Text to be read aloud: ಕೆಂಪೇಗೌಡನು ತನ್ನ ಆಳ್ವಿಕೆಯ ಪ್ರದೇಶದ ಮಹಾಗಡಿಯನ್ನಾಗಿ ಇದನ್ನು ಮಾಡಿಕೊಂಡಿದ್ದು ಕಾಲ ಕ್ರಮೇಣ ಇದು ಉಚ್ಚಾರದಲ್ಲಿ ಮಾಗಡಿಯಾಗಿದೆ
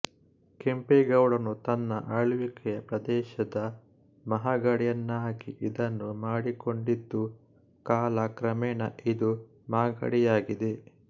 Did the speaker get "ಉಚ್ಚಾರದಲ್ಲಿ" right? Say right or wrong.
wrong